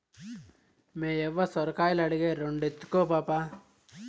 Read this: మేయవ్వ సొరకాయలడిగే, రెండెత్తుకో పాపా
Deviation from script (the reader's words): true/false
false